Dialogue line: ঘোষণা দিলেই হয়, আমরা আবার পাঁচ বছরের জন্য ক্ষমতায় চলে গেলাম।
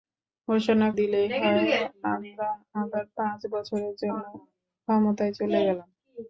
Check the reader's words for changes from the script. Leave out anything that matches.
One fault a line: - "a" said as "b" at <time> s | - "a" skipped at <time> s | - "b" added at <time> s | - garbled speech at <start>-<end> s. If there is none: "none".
none